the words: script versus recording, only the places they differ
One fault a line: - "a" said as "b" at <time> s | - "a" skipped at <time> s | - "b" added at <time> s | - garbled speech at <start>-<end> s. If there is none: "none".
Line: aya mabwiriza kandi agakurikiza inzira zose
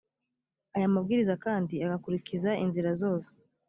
none